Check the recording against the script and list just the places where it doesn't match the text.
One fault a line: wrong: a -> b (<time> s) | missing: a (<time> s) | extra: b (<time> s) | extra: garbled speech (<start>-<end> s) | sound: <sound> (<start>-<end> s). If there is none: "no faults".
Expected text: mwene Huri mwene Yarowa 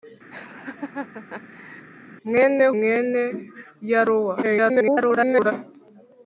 sound: laugh (0.3-1.9 s)
missing: Huri (2.6 s)
extra: garbled speech (4.4-5.5 s)